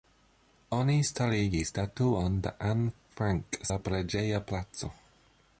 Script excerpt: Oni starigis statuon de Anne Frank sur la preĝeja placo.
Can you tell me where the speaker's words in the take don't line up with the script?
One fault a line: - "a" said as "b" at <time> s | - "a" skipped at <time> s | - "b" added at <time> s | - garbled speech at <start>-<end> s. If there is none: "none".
- "sur" skipped at 3.6 s